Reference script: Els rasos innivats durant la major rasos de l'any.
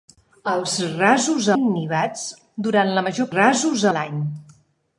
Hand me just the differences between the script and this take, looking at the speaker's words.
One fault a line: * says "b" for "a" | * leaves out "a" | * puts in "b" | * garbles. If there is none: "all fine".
all fine